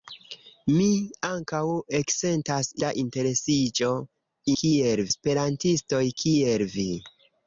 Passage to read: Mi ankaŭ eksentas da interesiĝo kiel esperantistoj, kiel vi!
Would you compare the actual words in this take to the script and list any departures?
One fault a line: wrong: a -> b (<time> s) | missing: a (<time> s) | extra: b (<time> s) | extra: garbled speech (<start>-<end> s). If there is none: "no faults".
no faults